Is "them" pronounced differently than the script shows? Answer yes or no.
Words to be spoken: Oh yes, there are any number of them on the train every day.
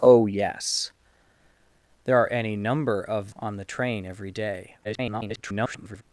yes